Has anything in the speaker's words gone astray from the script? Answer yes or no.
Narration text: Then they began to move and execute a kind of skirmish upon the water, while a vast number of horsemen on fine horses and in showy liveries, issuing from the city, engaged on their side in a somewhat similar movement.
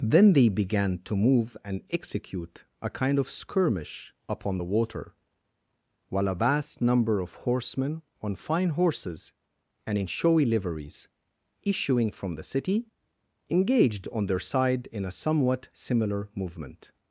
no